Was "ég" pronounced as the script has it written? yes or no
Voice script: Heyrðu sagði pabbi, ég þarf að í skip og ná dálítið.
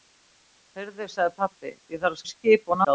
yes